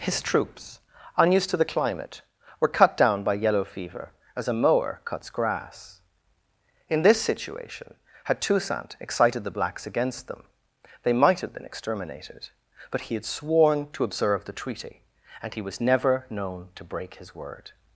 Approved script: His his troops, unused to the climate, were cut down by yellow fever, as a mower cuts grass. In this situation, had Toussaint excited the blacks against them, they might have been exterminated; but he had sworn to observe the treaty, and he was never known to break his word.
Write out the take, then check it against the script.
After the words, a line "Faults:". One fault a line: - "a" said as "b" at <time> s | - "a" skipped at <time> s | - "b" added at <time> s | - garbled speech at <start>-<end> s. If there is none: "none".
His troops, unused to the climate, were cut down by yellow fever, as a mower cuts grass. In this situation, had Toussaint excited the blacks against them, they might have been exterminated; but he had sworn to observe the treaty, and he was never known to break his word.
Faults:
- "his" skipped at 0.2 s